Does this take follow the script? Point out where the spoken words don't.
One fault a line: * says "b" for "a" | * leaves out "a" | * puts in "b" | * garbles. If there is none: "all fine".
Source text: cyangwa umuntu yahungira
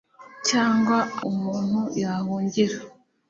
all fine